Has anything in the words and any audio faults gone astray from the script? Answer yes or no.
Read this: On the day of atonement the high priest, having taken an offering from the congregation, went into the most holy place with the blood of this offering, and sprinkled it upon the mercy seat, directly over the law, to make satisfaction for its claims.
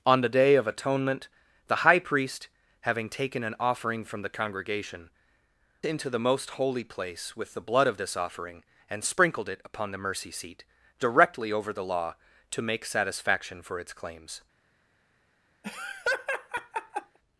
yes